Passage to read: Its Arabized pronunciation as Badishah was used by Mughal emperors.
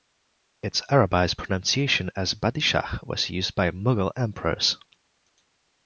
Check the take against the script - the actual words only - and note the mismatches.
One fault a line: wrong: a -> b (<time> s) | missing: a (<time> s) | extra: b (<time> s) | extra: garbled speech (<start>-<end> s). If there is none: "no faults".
no faults